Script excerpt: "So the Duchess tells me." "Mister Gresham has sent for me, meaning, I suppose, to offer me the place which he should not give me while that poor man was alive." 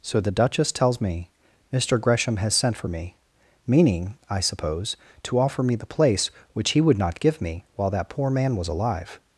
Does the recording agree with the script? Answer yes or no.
no